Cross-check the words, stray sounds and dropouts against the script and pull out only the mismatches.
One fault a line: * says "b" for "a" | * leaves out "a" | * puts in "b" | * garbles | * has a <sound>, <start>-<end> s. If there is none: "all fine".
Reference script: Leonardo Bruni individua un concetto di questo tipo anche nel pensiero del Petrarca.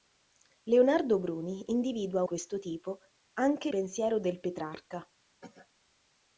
* leaves out "un concetto di"
* leaves out "nel"
* has a cough, 5.4-5.7 s